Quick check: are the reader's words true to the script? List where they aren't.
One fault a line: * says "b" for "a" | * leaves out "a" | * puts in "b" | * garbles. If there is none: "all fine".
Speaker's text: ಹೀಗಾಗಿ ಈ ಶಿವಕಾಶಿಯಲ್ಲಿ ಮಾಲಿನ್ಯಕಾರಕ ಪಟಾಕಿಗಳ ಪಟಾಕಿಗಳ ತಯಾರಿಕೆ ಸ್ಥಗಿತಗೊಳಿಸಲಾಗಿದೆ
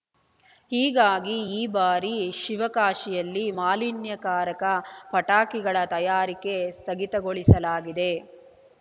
* puts in "ಬಾರಿ"
* leaves out "ಪಟಾಕಿಗಳ"